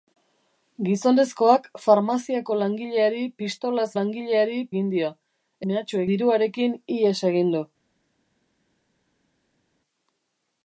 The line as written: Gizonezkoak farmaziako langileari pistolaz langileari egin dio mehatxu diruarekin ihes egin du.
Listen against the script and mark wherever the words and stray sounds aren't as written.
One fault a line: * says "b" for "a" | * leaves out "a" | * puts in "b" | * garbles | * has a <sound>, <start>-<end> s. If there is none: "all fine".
all fine